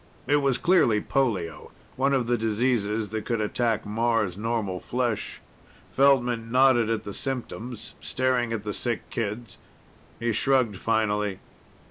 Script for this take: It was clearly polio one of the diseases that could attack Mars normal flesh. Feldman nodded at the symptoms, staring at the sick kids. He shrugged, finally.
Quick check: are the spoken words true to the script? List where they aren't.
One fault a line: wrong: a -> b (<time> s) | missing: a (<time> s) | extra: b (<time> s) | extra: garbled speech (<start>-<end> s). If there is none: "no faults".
no faults